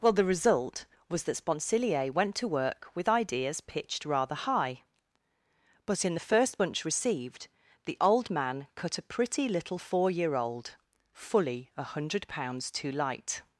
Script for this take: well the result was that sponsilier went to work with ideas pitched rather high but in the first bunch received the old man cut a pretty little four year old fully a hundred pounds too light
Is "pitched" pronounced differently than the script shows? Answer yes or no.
no